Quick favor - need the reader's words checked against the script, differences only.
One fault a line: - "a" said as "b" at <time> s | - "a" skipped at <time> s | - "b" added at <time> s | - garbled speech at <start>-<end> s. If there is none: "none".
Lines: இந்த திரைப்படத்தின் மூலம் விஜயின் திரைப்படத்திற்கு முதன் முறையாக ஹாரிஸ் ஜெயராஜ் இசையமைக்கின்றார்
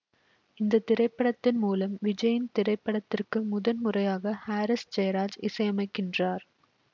none